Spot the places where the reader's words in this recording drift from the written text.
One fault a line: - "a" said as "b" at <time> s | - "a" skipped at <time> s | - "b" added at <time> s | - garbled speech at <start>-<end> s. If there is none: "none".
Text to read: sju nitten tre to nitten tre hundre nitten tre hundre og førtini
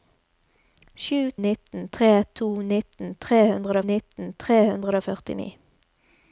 none